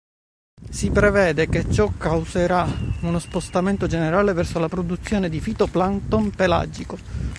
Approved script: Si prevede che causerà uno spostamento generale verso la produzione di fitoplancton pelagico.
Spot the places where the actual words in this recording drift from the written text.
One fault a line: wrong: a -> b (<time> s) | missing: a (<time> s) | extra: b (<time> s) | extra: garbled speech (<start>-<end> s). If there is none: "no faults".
extra: ciò (1.7 s)